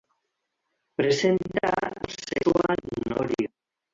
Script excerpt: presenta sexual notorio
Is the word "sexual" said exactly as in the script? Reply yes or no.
yes